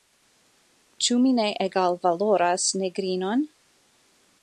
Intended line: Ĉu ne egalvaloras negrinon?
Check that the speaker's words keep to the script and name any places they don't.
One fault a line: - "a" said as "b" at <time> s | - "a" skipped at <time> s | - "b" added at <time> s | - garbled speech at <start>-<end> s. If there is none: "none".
- "mi" added at 1.2 s